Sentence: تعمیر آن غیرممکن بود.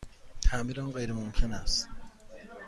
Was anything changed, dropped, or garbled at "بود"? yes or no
yes